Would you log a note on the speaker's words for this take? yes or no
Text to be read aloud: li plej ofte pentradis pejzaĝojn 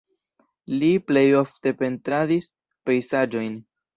no